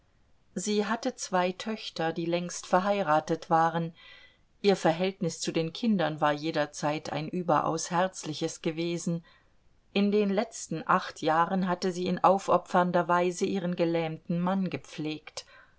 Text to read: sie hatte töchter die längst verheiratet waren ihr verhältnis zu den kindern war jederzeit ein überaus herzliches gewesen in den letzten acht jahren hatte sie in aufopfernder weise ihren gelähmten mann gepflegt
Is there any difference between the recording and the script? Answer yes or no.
yes